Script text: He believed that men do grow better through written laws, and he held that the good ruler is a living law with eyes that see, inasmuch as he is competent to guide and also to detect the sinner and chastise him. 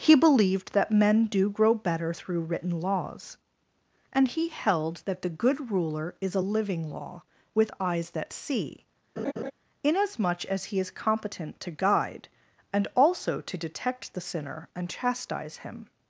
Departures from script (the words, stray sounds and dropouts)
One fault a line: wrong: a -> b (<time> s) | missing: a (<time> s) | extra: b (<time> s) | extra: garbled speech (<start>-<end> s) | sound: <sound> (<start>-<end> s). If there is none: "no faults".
sound: laugh (9.2-9.5 s)